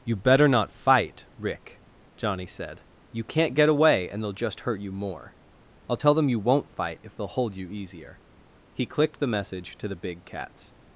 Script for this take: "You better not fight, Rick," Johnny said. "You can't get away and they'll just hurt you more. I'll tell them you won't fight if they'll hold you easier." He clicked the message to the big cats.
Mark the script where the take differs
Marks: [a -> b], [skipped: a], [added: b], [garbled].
"You better not fight, Rick," Johnny said. "You can't get away and they'll just hurt you more. I'll tell them you won't fight if they'll hold you easier." He clicked the message to the big cats.